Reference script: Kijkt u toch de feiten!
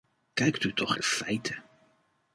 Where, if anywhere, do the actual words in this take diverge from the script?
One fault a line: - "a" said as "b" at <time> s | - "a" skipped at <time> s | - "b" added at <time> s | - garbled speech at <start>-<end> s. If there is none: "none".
none